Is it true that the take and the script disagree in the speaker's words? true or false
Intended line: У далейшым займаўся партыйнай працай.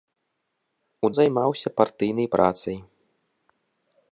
true